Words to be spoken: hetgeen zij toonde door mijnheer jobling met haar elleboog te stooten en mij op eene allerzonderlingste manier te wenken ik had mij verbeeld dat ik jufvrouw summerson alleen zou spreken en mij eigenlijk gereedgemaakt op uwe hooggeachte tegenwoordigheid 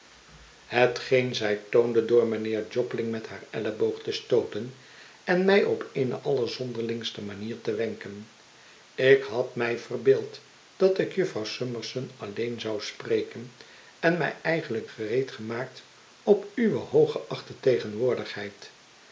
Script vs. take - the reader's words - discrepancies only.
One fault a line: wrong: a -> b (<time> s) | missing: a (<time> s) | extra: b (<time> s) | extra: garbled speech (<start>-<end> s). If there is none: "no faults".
no faults